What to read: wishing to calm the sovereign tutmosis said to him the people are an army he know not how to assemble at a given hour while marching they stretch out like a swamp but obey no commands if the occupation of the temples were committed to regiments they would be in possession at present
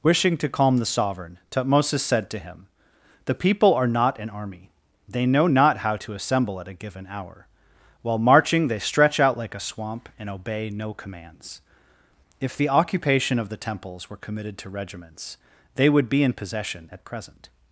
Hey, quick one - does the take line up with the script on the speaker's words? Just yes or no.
no